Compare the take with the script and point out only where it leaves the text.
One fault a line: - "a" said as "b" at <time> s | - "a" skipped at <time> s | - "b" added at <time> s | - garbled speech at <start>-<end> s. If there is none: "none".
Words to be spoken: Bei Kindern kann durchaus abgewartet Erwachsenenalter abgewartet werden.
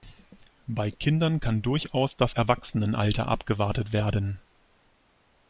- "abgewartet" said as "das" at 2.1 s